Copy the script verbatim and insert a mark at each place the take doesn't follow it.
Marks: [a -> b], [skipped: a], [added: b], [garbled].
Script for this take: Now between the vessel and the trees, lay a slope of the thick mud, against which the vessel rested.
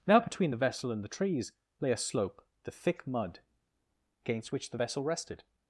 Now between the vessel and the trees, lay a slope [skipped: of] the thick mud, against which the vessel rested.